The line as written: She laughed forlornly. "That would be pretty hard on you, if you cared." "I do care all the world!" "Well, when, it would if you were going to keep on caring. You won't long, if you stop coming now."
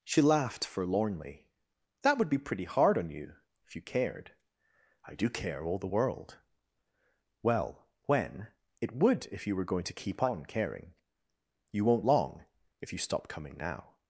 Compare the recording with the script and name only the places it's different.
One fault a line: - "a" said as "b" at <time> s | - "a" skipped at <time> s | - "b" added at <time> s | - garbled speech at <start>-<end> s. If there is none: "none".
none